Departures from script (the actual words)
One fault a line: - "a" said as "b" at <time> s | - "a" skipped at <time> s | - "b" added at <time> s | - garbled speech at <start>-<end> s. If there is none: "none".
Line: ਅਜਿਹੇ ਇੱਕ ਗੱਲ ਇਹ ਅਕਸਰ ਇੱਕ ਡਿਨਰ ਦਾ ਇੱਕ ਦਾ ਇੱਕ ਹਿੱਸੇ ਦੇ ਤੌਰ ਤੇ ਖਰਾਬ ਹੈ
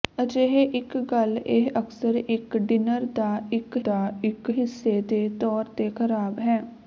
none